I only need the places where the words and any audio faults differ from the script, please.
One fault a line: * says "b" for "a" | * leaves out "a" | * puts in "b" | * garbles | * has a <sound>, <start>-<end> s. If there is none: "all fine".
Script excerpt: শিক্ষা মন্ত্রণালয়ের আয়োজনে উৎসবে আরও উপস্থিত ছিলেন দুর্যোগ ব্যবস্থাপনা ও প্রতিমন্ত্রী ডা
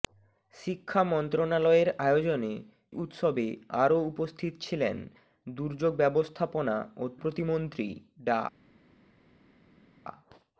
all fine